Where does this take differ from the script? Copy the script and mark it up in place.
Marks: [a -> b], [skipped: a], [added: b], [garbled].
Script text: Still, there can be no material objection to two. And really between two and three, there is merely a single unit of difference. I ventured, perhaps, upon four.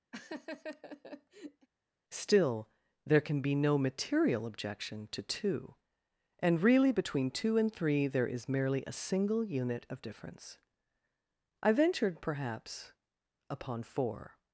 Still, there can be no material objection to two. And really between two and three, there is merely a single unit of difference. I ventured, perhaps, upon four.